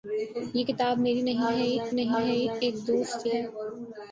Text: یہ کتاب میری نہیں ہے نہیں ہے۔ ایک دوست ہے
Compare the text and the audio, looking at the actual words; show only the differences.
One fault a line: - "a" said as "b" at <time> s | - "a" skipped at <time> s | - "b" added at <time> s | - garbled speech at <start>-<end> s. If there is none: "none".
none